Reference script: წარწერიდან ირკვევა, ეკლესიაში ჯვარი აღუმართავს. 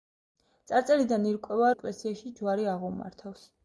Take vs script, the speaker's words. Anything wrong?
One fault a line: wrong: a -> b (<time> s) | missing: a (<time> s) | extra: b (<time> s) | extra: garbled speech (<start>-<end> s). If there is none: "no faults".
no faults